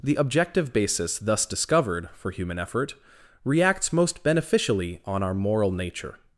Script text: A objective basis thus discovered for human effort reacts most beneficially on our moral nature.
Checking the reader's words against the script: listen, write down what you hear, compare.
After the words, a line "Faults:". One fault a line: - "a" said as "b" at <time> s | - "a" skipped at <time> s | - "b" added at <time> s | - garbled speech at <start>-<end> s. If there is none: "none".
The objective basis thus discovered for human effort reacts most beneficially on our moral nature.
Faults:
- "A" said as "The" at 0.0 s